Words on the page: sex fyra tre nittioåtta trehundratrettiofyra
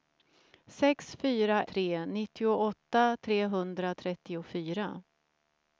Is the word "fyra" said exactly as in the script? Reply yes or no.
yes